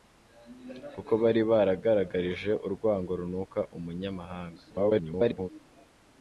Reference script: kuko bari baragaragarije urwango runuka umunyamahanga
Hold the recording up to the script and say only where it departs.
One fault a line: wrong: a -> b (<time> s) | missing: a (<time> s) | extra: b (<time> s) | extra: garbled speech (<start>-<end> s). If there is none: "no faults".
extra: garbled speech (4.7-5.5 s)